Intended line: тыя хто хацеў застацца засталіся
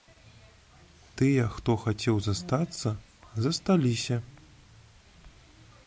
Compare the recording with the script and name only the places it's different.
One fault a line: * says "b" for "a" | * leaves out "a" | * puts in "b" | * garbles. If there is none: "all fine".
all fine